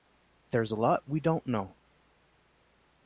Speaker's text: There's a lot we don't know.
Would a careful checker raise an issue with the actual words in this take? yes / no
no